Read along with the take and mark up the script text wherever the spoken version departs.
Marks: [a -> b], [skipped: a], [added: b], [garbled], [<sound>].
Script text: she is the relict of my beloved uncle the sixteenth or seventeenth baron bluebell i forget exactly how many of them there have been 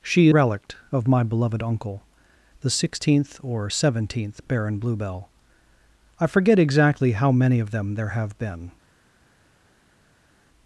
she [skipped: is the] relict of my beloved uncle the sixteenth or seventeenth baron bluebell i forget exactly how many of them there have been